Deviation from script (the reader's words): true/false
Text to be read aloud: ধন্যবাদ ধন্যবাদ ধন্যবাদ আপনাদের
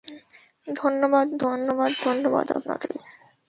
false